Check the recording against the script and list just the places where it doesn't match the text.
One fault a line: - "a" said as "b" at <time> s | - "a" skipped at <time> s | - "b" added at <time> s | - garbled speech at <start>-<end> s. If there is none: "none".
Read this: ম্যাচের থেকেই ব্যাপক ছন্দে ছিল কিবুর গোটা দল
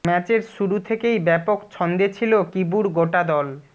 - "শুরু" added at 0.6 s